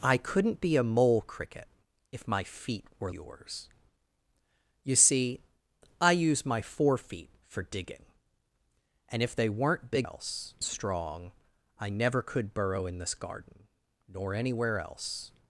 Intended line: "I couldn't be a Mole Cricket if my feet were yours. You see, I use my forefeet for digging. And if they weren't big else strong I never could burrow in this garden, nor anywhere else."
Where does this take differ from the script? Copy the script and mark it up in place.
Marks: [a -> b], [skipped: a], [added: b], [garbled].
"I couldn't be a Mole Cricket if my feet were yours. You see, I use my forefeet for digging. And if they weren't big else strong I never could burrow in this garden, nor anywhere else."